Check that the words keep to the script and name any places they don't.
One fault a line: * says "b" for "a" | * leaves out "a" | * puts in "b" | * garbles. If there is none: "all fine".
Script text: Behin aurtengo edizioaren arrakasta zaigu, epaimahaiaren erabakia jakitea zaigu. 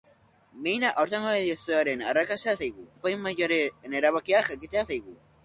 all fine